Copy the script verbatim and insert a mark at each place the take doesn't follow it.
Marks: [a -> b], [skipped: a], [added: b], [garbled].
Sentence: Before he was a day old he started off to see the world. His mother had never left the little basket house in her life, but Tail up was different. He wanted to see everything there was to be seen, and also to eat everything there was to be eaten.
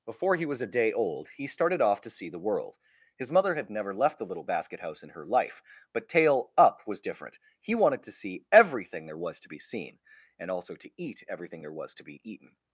Before he was a day old he started off to see the world. His mother had never left the little basket house in her life, but Tail up was different. He wanted to see everything there was to be seen, and also to eat everything there was to be eaten.